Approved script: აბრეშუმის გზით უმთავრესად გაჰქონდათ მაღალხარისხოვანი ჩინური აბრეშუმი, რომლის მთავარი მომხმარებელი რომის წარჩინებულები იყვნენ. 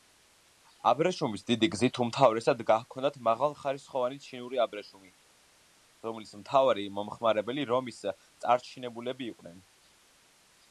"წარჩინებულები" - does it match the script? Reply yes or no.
yes